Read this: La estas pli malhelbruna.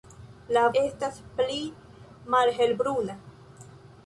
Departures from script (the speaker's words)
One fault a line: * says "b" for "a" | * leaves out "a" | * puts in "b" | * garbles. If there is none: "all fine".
all fine